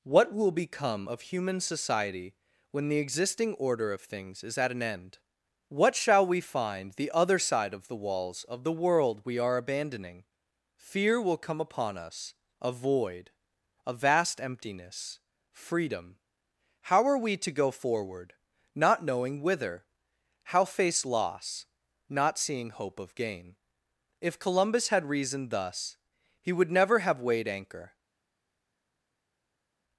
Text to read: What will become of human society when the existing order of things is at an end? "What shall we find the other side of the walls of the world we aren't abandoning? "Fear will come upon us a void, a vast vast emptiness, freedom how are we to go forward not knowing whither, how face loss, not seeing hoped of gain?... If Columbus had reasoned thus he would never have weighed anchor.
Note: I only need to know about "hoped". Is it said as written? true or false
false